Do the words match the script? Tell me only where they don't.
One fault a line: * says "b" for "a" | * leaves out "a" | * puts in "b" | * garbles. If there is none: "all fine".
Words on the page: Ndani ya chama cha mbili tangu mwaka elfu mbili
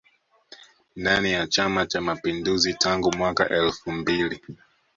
* says "mapinduzi" for "mbili"